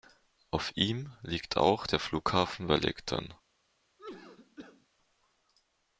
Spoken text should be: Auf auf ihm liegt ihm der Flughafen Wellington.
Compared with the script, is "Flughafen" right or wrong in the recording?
right